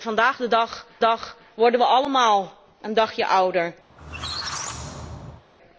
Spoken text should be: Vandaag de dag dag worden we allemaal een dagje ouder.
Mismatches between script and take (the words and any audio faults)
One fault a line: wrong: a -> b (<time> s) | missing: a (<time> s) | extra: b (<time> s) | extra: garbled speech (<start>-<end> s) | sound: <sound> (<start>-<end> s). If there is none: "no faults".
sound: squeak (3.9-5.4 s)